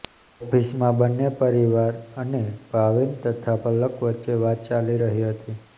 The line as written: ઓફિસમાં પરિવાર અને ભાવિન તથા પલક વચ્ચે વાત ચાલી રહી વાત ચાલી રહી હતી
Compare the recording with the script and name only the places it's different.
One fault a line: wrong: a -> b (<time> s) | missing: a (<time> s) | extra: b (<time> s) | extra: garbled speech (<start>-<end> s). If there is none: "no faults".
extra: બંને (1.0 s)
missing: વાત ચાલી રહી (5.3 s)